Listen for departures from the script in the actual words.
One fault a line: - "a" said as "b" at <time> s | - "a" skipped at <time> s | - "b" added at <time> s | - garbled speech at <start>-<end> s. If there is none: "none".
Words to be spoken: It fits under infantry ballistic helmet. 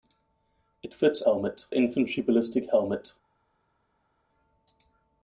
- "under" said as "helmet" at 1.2 s